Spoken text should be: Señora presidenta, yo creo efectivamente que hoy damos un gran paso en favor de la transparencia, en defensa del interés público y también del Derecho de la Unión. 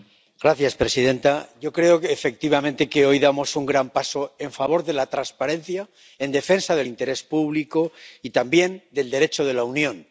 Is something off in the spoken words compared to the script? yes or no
no